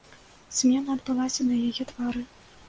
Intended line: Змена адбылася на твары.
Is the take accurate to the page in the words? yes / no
no